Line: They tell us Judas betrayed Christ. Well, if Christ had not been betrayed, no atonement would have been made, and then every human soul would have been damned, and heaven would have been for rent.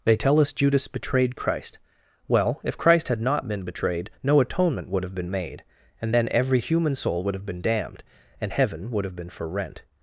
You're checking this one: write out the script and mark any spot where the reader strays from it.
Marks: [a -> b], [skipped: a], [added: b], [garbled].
They tell us Judas betrayed Christ. Well, if Christ had not been betrayed, no atonement would have been made, and then every human soul would have been damned, and heaven would have been for rent.